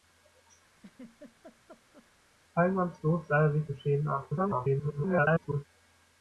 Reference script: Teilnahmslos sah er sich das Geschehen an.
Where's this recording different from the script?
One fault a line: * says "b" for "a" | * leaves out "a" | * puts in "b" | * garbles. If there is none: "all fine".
* leaves out "das"
* garbles